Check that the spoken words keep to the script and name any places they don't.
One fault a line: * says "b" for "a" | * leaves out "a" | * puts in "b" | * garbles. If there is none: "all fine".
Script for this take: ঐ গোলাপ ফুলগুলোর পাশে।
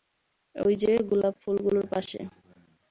* puts in "যে"